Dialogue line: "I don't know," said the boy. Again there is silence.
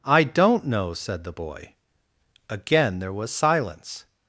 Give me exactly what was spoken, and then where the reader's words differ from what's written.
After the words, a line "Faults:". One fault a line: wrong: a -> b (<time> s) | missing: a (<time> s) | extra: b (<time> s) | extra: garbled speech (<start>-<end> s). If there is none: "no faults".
"I don't know," said the boy. Again there was silence.
Faults:
wrong: is -> was (3.1 s)